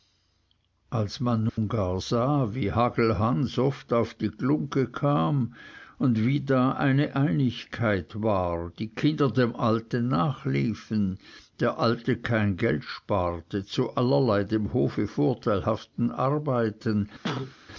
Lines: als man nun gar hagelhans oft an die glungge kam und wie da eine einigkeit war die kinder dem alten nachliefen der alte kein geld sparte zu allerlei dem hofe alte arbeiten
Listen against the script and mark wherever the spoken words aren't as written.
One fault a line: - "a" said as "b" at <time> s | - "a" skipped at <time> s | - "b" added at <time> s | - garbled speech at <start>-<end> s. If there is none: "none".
- "sah wie" added at 2.0 s
- "an" said as "auf" at 3.9 s
- "alte" said as "vorteilhaften" at 15.1 s